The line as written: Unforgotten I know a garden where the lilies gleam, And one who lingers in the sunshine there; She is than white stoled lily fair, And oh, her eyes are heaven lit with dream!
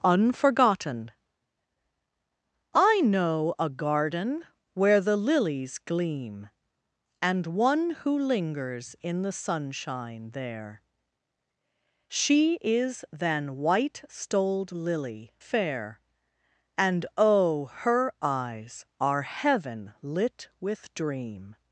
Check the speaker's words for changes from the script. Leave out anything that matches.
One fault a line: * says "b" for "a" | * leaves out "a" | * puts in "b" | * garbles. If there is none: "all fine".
all fine